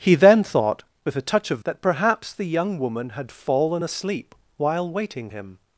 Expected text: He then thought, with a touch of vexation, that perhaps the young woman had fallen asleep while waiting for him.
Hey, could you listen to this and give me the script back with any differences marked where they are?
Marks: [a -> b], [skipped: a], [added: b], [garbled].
He then thought, with a touch of [skipped: vexation,] that perhaps the young woman had fallen asleep while waiting [skipped: for] him.